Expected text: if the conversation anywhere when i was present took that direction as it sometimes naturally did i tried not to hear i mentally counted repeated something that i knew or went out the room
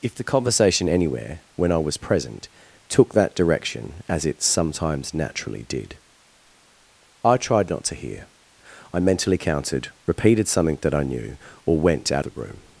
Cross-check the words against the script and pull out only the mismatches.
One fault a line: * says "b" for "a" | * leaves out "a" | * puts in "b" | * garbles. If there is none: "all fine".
all fine